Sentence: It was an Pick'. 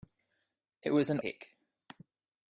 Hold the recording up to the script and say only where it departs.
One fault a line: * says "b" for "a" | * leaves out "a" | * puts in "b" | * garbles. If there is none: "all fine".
all fine